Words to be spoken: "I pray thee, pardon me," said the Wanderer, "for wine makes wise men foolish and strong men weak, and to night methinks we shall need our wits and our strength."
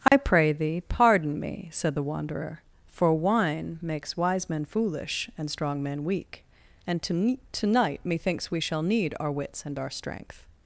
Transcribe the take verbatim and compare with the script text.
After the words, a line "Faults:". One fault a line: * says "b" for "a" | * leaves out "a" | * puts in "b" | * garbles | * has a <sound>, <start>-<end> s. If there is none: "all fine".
"I pray thee, pardon me," said the Wanderer, "for wine makes wise men foolish and strong men weak, and to to night methinks we shall need our wits and our strength."
Faults:
* has a dropout, 0.1-0.1 s
* puts in "to"